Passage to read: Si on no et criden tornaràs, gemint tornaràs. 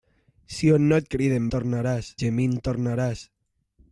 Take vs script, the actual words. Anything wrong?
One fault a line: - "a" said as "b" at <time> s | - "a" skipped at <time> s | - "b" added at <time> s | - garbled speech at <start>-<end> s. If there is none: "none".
none